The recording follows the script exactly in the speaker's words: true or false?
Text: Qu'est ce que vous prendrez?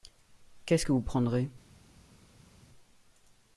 true